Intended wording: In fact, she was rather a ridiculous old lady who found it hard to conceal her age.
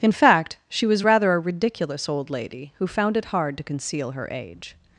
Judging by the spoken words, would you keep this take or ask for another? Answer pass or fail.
pass